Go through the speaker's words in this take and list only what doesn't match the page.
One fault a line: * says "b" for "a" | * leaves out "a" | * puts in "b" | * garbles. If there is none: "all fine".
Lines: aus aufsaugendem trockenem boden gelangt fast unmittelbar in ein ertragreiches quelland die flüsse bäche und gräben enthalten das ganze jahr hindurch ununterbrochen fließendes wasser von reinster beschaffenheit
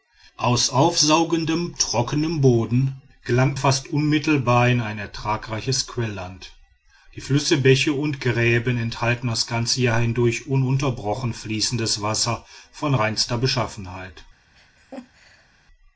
all fine